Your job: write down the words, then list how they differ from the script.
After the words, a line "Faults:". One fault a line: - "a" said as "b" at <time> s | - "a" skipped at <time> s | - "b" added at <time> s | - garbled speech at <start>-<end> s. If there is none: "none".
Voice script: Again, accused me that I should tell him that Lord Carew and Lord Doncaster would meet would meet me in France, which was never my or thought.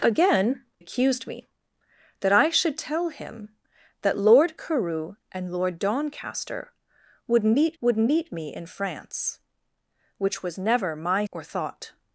Again, accused me that I should tell him that Lord Carew and Lord Doncaster would meet would meet me in France, which was never my or thought.
Faults:
none